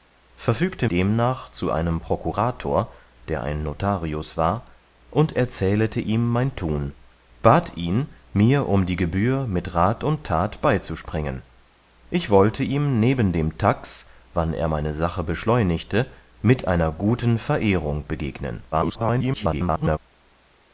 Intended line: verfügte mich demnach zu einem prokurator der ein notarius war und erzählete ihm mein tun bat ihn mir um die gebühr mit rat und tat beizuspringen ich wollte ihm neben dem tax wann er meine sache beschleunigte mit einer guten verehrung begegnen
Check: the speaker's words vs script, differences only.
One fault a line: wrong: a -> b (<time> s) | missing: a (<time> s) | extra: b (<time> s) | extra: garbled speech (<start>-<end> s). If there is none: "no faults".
missing: mich (0.9 s)
extra: garbled speech (18.7-20.0 s)